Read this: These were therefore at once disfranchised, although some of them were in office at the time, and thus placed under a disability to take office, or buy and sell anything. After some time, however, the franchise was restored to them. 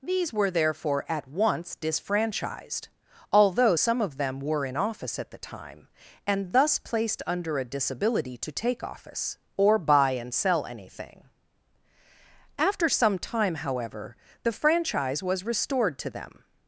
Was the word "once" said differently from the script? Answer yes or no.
no